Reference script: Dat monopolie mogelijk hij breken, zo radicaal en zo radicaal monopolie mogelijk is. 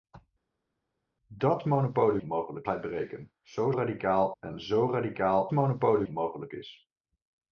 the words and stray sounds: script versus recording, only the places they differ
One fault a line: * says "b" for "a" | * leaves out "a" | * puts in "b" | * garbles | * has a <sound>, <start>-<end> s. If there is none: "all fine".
all fine